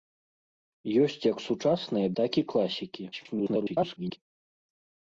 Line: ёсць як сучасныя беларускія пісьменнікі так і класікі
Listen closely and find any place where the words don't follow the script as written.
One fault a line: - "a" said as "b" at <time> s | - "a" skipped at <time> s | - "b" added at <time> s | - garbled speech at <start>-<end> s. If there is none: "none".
- "беларускія пісьменнікі" skipped at 2.1 s
- garbled speech at 3.1-4.2 s